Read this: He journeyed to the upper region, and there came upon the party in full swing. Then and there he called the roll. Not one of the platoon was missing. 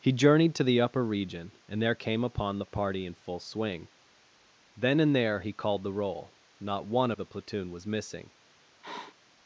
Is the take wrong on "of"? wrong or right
wrong